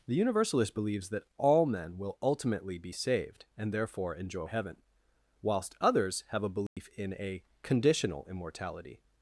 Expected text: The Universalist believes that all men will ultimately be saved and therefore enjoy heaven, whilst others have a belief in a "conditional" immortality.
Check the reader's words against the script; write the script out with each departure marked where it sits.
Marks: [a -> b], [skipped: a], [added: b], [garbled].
The Universalist believes that all men will ultimately be saved and therefore enjoy heaven, whilst others have a belief in a "conditional" immortality.